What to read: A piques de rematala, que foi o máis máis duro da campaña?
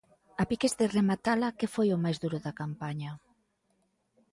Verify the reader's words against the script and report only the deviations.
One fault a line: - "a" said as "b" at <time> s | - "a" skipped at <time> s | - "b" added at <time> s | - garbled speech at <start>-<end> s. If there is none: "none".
- "máis" skipped at 2.2 s